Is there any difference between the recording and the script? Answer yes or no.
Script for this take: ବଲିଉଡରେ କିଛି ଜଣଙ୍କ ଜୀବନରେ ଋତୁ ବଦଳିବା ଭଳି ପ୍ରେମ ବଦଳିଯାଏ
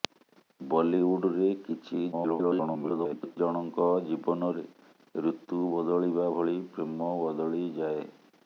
yes